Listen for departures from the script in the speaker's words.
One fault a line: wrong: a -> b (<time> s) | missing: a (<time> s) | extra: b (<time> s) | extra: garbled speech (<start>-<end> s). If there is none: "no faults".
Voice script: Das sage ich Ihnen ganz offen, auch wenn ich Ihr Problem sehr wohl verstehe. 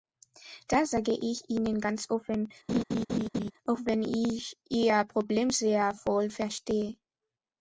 no faults